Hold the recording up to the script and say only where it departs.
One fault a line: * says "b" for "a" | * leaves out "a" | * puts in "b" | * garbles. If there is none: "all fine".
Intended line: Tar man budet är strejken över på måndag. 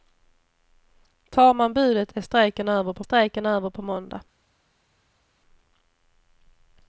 * puts in "strejken över på"